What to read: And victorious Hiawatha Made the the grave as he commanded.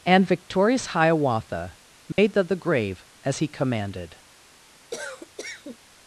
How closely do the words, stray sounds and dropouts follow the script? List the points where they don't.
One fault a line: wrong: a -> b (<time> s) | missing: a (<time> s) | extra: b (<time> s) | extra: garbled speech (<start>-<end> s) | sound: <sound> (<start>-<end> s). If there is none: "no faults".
sound: dropout (2.1-2.2 s)
sound: cough (4.9-5.8 s)